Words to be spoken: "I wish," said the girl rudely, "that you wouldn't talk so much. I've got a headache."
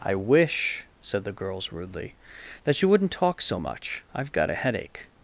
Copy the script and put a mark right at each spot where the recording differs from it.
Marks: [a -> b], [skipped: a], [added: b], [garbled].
"I wish," said the [girl -> girls] rudely, "that you wouldn't talk so much. I've got a headache."